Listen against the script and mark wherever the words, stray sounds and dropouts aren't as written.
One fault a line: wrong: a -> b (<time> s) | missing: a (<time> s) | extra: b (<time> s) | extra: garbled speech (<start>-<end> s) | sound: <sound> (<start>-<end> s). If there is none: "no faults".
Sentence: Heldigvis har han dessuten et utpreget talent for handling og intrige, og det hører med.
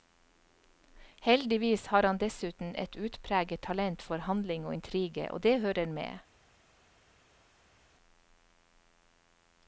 no faults